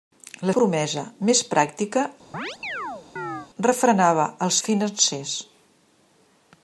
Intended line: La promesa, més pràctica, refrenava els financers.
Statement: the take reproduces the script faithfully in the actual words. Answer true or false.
true